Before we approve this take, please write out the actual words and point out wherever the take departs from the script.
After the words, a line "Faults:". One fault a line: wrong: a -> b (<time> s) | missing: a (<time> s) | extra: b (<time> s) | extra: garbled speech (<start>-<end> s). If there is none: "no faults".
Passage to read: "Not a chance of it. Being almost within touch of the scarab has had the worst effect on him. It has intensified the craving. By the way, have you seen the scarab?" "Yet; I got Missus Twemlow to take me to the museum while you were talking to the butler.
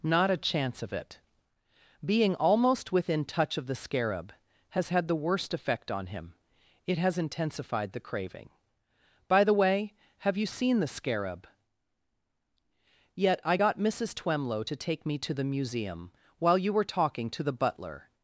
"Not a chance of it. Being almost within touch of the scarab has had the worst effect on him. It has intensified the craving. By the way, have you seen the scarab?" "Yet; I got Missus Twemlow to take me to the museum while you were talking to the butler.
Faults:
no faults